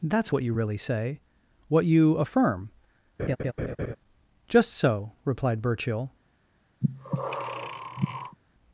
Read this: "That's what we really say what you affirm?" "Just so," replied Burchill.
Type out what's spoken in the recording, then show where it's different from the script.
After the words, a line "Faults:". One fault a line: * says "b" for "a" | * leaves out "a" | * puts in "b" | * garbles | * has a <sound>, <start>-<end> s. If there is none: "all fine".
"That's what you really say what you affirm?" "Just so," replied Burchill.
Faults:
* says "you" for "we"
* has a laugh, 3.2-4.0 s
* has a breath, 6.8-8.4 s